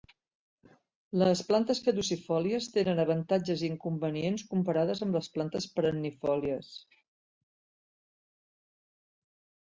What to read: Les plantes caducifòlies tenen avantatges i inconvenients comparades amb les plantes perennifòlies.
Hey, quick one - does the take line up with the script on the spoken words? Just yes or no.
yes